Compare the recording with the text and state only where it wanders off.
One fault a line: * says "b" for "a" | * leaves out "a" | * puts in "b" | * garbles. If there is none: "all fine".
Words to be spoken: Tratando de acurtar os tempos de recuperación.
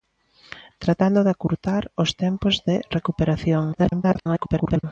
* garbles